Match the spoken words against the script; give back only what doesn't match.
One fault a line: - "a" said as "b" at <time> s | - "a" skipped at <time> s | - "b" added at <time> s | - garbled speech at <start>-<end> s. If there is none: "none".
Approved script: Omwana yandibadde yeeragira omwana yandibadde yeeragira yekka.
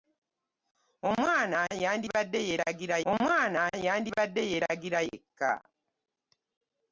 none